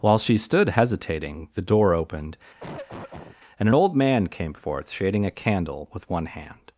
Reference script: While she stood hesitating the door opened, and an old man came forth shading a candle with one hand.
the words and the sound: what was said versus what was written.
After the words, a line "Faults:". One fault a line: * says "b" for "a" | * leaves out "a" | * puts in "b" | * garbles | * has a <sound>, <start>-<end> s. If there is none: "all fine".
While she stood hesitating the door opened, and an old man came forth shading a candle with one hand.
Faults:
* has a cough, 2.6-3.4 s